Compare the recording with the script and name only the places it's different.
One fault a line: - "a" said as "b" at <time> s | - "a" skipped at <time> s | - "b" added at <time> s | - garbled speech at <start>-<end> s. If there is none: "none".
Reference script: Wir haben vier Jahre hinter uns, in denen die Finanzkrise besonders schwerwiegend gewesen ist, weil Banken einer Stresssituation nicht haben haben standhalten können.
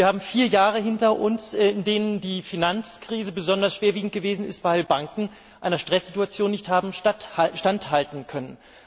- "haben" skipped at 6.9 s